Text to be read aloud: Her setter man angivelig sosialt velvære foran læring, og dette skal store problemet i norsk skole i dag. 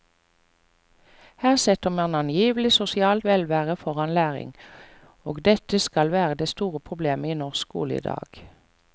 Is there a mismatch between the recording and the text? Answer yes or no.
yes